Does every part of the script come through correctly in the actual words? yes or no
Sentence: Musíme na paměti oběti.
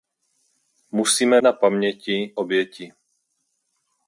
yes